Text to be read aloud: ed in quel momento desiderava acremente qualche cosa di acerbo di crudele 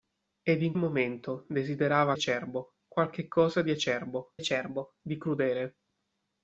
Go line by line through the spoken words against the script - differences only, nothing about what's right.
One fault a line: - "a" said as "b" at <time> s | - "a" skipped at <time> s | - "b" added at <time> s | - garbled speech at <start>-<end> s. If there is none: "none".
- "quel" skipped at 0.7 s
- "acremente" said as "acerbo" at 2.1 s
- "acerbo" added at 4.4 s